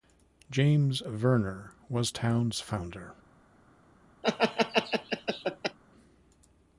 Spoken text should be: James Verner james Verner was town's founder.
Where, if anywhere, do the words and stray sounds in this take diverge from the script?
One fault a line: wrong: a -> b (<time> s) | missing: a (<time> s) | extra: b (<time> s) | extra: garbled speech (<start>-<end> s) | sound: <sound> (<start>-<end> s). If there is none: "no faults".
missing: james Verner (1.7 s)
sound: laugh (4.2-5.8 s)